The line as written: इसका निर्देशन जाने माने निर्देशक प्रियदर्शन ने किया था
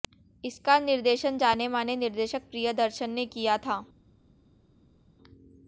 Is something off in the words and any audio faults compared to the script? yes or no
no